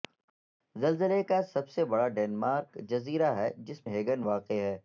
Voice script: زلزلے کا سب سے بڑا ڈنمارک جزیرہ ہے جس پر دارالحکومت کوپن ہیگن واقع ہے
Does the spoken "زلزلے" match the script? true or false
true